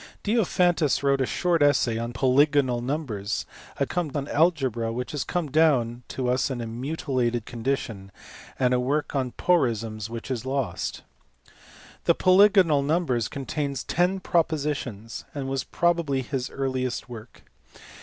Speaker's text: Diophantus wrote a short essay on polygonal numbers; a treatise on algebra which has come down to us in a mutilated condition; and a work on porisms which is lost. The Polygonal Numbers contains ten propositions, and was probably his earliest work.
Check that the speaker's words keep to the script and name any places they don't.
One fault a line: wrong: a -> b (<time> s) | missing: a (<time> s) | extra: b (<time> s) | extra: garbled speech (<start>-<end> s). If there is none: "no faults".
wrong: treatise -> come (3.8 s)